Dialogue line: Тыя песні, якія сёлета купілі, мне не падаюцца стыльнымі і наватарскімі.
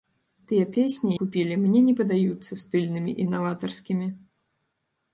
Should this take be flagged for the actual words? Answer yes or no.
yes